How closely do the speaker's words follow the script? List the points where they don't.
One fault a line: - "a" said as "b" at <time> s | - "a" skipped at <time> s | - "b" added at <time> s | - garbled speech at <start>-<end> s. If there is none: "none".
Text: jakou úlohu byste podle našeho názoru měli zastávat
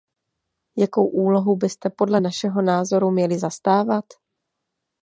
none